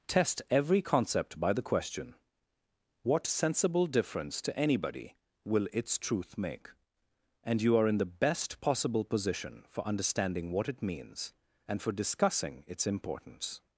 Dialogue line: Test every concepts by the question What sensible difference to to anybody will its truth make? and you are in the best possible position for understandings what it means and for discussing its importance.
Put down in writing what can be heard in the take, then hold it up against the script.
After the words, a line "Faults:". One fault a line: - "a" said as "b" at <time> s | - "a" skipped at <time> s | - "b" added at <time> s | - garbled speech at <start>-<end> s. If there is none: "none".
Test every concept by the question What sensible difference to anybody will its truth make? and you are in the best possible position for understanding what it means and for discussing its importance.
Faults:
- "concepts" said as "concept" at 0.8 s
- "to" skipped at 4.6 s
- "understandings" said as "understanding" at 9.8 s